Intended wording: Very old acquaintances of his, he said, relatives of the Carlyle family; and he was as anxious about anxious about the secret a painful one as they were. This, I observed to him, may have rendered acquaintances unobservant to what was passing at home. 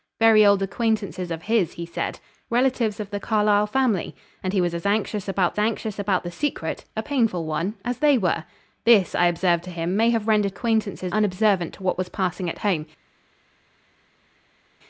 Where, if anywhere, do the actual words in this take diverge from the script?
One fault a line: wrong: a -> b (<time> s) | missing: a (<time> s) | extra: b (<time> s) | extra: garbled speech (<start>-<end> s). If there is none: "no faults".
no faults